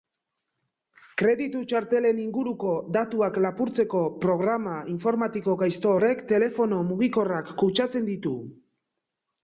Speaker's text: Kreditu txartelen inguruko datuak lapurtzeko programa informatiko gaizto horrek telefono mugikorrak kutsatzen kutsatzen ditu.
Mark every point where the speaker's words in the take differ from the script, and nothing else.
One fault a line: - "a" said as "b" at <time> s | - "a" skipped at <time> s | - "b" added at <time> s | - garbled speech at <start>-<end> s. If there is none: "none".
- "kutsatzen" skipped at 8.1 s